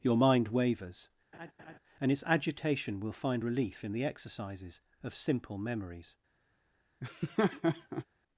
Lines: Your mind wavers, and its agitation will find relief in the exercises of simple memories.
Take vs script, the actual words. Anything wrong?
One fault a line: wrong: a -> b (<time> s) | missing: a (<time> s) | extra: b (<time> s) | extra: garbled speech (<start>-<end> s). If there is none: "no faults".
no faults